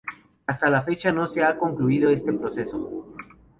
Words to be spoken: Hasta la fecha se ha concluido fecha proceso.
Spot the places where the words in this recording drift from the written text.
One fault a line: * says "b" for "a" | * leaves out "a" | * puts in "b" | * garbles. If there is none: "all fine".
* puts in "no"
* says "este" for "fecha"